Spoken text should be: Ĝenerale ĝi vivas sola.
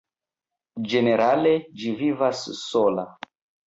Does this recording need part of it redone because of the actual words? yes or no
no